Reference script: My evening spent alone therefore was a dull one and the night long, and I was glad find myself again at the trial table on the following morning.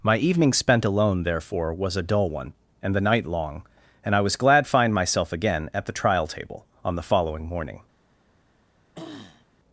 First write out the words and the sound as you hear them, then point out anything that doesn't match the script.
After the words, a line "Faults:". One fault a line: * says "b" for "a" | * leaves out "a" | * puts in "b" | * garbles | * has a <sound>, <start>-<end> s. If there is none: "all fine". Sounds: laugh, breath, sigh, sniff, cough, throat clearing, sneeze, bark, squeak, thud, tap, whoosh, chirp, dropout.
My evening spent alone therefore was a dull one and the night long, and I was glad find myself again at the trial table on the following morning.
Faults:
* has a throat clearing, 8.9-9.5 s